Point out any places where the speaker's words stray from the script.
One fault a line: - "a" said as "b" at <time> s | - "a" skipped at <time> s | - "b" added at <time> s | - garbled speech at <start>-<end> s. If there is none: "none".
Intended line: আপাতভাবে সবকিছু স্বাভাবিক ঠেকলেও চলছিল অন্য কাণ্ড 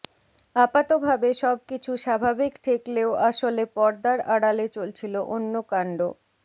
- "আসলে পর্দার আড়ালে" added at 3.3 s